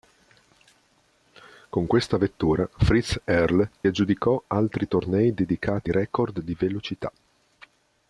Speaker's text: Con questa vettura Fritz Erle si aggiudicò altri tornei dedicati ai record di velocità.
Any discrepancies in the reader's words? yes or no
yes